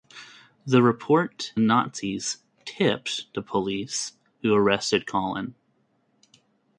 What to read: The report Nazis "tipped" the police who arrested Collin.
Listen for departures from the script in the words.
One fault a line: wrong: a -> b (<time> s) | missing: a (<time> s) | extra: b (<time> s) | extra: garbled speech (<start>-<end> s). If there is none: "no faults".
no faults